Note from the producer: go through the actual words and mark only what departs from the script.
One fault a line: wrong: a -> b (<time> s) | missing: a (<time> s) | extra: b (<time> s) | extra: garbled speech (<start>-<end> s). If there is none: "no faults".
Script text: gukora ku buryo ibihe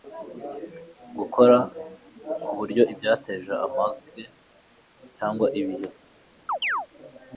extra: ibyateje amage cyangwa (2.9 s)